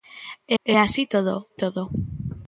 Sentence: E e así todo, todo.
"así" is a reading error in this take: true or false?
false